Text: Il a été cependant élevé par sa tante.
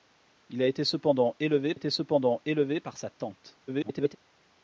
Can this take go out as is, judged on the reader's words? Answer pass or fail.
fail